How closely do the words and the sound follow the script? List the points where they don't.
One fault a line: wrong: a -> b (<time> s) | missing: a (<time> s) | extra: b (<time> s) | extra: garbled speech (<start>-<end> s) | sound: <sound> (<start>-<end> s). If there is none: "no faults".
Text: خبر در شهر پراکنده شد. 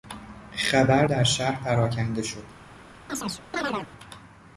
sound: chirp (3.1-3.9 s)